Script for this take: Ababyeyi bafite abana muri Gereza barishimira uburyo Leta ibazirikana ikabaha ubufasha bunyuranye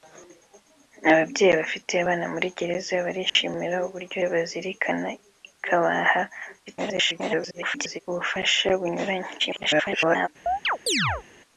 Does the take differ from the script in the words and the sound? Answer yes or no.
yes